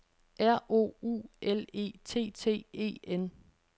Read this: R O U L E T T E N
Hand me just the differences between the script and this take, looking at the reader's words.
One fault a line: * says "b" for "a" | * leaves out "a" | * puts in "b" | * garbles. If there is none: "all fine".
all fine